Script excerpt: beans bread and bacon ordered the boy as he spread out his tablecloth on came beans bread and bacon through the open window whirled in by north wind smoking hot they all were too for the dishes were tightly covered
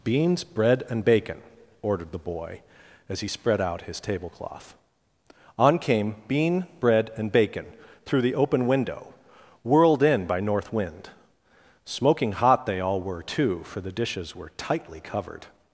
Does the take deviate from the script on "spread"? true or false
false